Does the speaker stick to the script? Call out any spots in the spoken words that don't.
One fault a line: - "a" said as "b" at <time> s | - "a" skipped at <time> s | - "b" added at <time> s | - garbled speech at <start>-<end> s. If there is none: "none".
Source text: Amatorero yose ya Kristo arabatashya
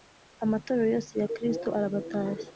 none